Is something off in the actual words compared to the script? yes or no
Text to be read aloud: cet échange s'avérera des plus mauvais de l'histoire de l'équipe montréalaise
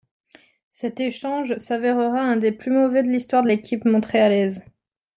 yes